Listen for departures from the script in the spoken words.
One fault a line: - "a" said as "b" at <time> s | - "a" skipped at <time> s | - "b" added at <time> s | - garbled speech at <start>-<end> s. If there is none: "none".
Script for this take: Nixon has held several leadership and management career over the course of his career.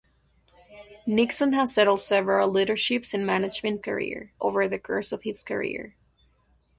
none